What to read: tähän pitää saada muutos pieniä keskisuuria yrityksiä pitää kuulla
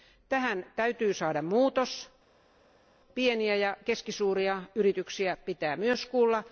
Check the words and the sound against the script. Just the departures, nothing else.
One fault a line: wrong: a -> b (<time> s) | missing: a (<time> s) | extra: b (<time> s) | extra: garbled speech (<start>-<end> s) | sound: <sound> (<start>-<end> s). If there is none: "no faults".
wrong: pitää -> täytyy (0.8 s)
extra: ja (3.6 s)
extra: myös (5.8 s)